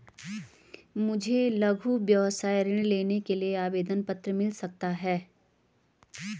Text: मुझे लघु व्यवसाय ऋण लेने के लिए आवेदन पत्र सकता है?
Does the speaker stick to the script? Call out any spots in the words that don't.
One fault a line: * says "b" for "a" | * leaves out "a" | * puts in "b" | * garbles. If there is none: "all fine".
* puts in "मिल"